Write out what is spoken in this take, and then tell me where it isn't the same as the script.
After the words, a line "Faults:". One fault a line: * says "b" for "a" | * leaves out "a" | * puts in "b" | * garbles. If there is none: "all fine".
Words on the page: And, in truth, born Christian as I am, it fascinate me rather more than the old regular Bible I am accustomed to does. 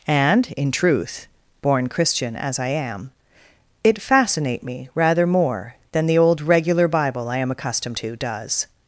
And, in truth, born Christian as I am, it fascinate me rather more than the old regular Bible I am accustomed to does.
Faults:
all fine